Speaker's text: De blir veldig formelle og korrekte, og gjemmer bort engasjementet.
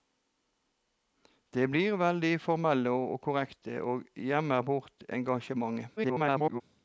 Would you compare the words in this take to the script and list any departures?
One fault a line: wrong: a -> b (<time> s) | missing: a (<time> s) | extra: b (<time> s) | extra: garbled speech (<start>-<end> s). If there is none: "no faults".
extra: garbled speech (6.0-6.6 s)